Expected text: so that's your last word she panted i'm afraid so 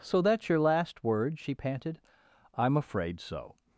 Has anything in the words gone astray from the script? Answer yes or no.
no